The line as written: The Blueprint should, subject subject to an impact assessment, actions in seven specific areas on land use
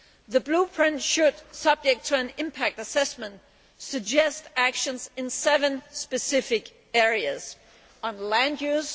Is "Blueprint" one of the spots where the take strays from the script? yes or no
no